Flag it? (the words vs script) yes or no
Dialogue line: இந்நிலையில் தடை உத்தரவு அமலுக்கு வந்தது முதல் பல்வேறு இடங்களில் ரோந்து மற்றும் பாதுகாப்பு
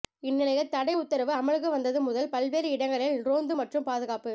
no